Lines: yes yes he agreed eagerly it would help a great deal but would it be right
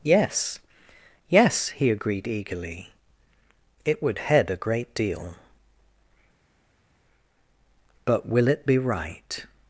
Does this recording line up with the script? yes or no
no